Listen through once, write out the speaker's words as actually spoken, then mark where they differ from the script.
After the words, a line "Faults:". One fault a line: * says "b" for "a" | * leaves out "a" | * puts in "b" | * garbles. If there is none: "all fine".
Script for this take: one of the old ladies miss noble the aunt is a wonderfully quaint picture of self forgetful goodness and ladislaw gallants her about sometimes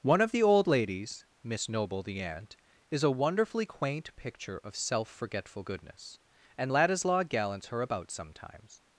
one of the old ladies miss noble the aunt is a wonderfully quaint picture of self forgetful goodness and ladislaw gallants her about sometimes
Faults:
all fine